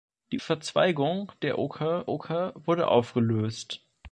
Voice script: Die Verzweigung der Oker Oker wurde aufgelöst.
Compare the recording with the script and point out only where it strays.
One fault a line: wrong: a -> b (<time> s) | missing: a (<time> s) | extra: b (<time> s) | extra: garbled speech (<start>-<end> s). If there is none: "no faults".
no faults